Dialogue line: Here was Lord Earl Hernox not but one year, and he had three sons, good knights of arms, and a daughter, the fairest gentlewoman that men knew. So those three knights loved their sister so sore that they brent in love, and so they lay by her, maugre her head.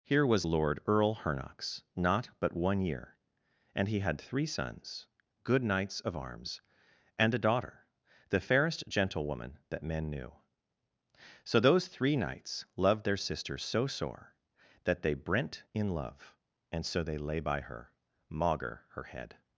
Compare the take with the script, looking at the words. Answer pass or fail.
pass